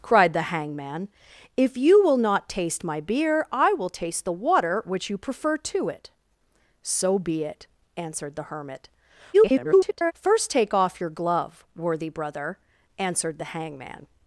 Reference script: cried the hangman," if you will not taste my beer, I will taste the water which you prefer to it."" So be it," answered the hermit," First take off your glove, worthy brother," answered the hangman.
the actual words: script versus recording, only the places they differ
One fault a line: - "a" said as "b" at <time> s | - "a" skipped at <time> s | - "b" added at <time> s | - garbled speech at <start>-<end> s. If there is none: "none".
- garbled speech at 9.3-10.1 s